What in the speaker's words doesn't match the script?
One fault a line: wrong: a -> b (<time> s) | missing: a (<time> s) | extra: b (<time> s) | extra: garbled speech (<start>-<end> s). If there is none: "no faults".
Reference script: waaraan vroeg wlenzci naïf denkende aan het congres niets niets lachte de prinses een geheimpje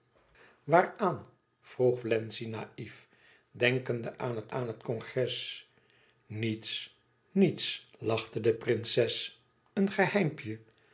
extra: aan het (4.5 s)